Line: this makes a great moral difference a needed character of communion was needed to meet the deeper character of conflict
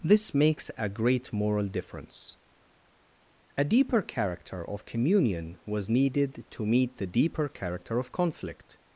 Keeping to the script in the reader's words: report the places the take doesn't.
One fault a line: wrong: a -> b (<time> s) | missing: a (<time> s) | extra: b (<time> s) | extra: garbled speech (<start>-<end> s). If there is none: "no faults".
wrong: needed -> deeper (3.6 s)